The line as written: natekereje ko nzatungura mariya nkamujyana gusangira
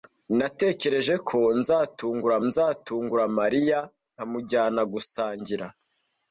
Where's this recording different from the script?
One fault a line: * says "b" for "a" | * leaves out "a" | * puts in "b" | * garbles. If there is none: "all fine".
* puts in "nzatungura"